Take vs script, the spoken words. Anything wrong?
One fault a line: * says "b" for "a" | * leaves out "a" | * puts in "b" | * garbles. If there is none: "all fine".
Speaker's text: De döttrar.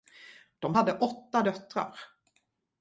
* puts in "hade åtta"